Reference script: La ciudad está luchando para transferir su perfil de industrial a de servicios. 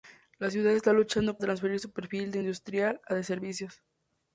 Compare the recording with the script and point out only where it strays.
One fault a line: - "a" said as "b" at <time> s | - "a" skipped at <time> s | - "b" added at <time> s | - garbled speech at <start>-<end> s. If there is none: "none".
- "para" skipped at 1.4 s